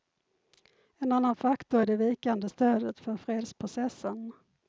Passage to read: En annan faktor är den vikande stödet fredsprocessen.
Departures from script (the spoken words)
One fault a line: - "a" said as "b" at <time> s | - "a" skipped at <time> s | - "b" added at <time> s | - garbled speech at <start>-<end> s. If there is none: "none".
- "den" said as "det" at 1.9 s
- "för" added at 3.0 s